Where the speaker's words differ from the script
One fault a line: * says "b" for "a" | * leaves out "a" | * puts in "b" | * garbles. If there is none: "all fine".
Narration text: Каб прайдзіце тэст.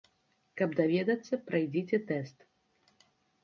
* puts in "даведацца"